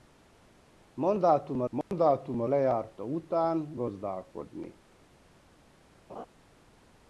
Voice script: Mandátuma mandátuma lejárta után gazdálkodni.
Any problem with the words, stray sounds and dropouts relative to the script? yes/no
yes